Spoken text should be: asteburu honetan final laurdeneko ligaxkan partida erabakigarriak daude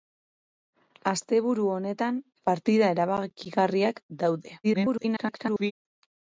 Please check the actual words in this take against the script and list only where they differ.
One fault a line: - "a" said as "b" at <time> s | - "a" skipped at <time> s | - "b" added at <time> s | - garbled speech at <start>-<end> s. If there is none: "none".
- "final laurdeneko ligaxkan" skipped at 2.2 s
- garbled speech at 4.6-5.7 s